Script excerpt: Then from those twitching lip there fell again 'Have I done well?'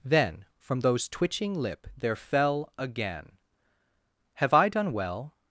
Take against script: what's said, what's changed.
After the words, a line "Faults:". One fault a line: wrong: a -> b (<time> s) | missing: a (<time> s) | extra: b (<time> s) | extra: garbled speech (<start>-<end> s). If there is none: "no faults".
Then from those twitching lip there fell again 'Have I done well?'
Faults:
no faults